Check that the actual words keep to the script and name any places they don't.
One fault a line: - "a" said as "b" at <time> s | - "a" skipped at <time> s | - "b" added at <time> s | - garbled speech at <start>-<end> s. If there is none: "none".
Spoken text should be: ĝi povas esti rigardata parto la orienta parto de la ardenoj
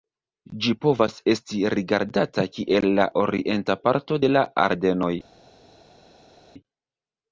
- "parto" said as "kiel" at 2.6 s